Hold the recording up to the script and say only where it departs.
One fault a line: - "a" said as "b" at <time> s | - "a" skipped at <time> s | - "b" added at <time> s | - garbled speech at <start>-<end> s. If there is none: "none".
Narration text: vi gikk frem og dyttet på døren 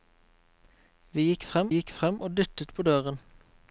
- "gikk frem" added at 1.7 s